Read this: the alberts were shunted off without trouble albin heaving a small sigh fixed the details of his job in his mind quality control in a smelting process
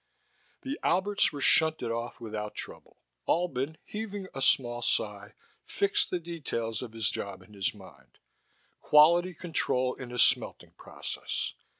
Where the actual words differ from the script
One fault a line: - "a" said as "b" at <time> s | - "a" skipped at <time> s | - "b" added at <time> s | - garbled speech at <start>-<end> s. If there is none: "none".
none